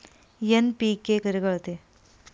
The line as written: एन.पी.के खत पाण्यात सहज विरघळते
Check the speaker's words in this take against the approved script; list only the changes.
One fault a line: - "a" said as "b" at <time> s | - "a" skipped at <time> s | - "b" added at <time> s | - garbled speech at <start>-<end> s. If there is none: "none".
- "खत पाण्यात सहज" skipped at 1.2 s